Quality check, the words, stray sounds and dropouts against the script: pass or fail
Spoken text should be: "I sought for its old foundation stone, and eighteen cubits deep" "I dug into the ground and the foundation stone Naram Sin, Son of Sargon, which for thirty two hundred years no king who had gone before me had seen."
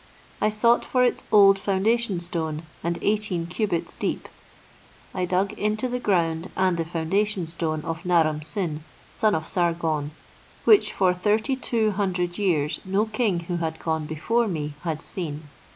fail